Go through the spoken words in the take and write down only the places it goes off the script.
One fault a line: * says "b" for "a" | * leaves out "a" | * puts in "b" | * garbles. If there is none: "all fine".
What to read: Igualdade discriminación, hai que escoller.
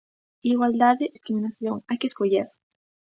all fine